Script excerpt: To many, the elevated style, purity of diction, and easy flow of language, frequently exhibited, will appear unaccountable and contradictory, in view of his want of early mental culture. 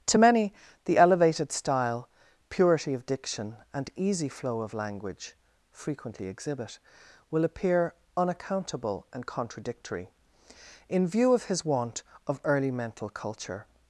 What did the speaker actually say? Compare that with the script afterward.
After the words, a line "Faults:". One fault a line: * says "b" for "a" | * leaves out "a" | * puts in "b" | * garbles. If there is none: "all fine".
To many, the elevated style, purity of diction, and easy flow of language, frequently exhibit, will appear unaccountable and contradictory, in view of his want of early mental culture.
Faults:
* says "exhibit" for "exhibited"